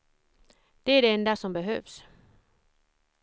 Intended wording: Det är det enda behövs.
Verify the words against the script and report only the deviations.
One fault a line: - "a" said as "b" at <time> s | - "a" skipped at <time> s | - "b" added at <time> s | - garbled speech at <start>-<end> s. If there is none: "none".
- "som" added at 1.4 s